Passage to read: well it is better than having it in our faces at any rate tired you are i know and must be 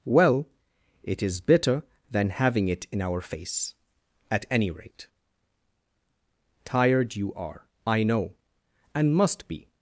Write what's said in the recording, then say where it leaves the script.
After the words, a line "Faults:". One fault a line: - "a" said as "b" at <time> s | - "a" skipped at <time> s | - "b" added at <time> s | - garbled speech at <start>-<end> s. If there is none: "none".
well it is better than having it in our face at any rate tired you are i know and must be
Faults:
- "faces" said as "face" at 3.2 s